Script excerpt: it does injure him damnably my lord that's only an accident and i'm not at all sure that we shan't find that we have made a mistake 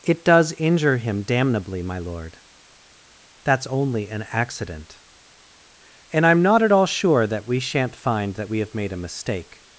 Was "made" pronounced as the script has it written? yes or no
yes